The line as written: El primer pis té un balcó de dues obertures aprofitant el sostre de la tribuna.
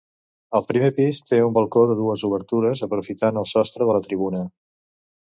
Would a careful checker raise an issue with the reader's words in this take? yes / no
no